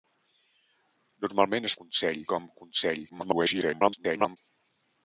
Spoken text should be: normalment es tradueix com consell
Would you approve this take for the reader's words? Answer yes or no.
no